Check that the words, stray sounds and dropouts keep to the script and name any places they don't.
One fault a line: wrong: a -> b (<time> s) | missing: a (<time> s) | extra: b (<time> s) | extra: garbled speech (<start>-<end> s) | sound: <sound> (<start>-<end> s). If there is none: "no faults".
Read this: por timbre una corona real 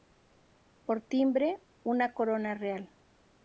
no faults